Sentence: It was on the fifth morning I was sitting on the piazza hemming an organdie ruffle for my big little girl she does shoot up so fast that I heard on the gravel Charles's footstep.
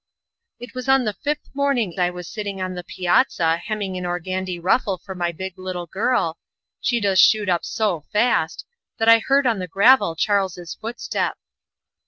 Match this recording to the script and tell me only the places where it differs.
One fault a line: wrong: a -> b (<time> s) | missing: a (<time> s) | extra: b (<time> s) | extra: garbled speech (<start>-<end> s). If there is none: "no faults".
no faults